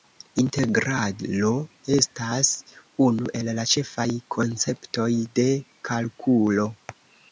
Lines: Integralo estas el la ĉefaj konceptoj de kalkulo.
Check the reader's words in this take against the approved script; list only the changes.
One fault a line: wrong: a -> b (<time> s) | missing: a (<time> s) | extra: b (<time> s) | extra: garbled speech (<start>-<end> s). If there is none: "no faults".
extra: unu (3.1 s)